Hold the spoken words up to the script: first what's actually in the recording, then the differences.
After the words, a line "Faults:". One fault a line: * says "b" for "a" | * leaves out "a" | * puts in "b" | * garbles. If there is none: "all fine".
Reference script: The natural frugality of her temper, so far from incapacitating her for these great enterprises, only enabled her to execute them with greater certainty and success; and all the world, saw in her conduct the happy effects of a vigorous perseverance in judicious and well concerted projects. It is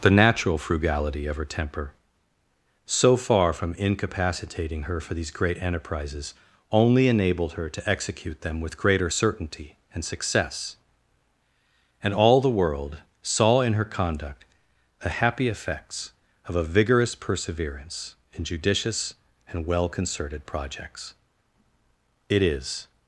The natural frugality of her temper, so far from incapacitating her for these great enterprises, only enabled her to execute them with greater certainty and success; and all the world, saw in her conduct the happy effects of a vigorous perseverance in judicious and well concerted projects. It is
Faults:
all fine